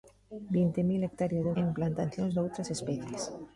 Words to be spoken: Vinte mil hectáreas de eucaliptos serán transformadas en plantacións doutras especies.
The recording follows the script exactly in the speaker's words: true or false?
false